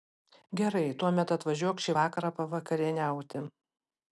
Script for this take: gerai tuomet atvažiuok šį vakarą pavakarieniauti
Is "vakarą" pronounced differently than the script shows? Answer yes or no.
no